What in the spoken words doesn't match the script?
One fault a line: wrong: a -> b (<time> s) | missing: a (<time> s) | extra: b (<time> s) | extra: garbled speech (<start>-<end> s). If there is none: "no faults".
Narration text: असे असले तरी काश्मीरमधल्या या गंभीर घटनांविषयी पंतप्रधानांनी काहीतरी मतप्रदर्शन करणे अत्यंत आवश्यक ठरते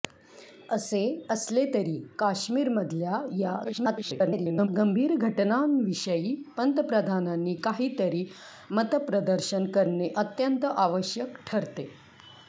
extra: garbled speech (3.6-4.7 s)